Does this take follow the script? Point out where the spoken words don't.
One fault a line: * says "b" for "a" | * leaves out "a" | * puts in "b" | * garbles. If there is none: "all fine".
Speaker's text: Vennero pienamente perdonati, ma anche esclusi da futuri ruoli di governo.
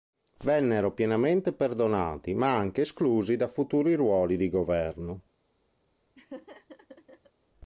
all fine